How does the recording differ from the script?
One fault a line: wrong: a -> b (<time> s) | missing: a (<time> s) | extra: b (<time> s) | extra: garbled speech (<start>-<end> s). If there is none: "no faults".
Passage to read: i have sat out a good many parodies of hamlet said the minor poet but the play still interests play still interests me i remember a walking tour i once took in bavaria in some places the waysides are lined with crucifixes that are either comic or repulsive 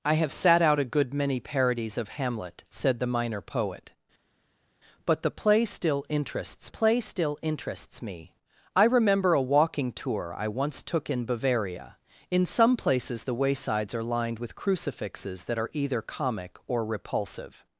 no faults